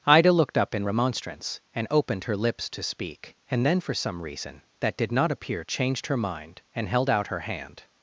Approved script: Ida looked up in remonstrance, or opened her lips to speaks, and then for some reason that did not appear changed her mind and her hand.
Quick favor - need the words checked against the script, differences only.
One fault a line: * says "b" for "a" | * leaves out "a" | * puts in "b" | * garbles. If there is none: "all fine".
* says "and" for "or"
* says "speak" for "speaks"
* puts in "held out"